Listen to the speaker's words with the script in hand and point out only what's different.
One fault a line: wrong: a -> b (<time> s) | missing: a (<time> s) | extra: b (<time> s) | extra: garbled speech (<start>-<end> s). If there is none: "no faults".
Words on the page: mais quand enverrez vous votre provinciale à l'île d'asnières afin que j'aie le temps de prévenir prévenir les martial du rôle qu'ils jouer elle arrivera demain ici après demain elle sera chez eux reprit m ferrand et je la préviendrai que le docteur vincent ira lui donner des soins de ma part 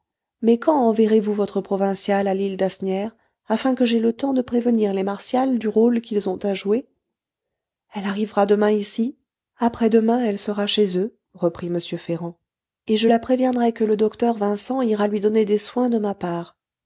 missing: prévenir (4.9 s)
extra: ont à (6.3 s)